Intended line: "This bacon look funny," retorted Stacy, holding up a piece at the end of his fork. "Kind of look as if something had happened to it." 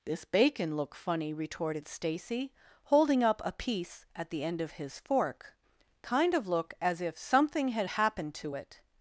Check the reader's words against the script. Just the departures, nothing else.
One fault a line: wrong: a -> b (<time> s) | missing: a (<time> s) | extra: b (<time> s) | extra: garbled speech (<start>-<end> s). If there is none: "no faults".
no faults